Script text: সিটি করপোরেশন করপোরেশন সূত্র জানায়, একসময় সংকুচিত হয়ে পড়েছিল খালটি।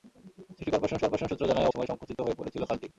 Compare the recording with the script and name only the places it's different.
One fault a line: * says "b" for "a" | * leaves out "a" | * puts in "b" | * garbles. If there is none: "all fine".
all fine